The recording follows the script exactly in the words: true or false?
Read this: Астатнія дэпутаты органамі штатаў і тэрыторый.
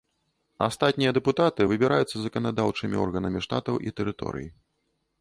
false